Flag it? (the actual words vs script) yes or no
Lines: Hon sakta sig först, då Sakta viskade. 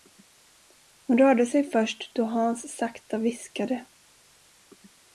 yes